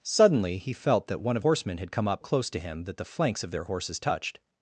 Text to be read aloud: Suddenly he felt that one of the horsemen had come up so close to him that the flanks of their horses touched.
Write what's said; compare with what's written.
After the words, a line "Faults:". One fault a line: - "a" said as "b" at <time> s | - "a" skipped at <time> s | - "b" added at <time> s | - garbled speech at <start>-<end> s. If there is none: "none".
Suddenly he felt that one of horsemen had come up close to him that the flanks of their horses touched.
Faults:
- "the" skipped at 1.4 s
- "so" skipped at 2.2 s